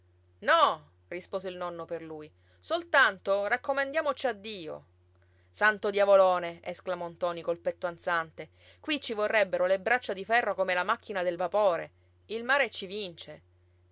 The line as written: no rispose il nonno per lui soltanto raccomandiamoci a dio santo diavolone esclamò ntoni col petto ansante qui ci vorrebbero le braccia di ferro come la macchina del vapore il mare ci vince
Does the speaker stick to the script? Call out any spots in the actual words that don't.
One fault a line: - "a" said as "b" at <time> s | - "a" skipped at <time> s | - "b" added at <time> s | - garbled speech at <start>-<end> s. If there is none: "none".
none